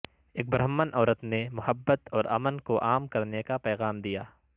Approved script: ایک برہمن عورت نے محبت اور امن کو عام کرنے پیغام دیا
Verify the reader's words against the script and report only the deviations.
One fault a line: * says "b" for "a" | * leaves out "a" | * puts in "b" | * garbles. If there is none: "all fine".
* puts in "کا"